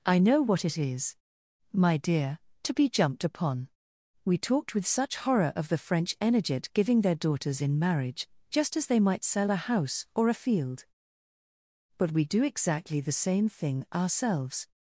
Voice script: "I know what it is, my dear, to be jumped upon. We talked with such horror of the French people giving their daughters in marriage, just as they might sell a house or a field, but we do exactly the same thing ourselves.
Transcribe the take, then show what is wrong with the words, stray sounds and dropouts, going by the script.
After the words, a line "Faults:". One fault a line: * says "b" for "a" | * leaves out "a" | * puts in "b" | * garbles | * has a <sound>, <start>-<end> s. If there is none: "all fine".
"I know what it is, my dear, to be jumped upon. We talked with such horror of the French energet giving their daughters in marriage, just as they might sell a house or a field, but we do exactly the same thing ourselves.
Faults:
* says "energet" for "people"